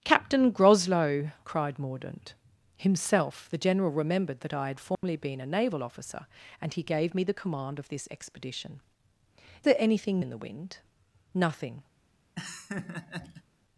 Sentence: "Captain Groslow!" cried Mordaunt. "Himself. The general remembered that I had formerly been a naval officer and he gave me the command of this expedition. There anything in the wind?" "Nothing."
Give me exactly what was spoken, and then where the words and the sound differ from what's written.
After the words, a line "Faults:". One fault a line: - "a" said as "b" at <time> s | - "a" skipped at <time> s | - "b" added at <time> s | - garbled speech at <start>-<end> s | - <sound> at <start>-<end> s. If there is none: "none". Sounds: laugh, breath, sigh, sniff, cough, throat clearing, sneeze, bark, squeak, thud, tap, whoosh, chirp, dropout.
"Captain Groslow!" cried Mordaunt. "Himself. The general remembered that I had formerly been a naval officer and he gave me the command of this expedition. There anything in the wind?" "Nothing."
Faults:
- dropout at 4.9-5.0 s
- laugh at 12.4-13.4 s